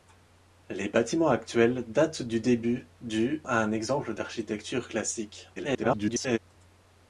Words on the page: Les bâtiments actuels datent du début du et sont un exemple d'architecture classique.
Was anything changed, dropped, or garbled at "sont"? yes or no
yes